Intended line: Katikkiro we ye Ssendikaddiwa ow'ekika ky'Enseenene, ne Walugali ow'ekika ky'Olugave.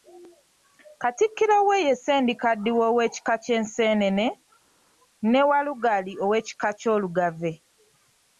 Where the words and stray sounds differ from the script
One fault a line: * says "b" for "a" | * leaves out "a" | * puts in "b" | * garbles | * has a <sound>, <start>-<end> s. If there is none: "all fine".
all fine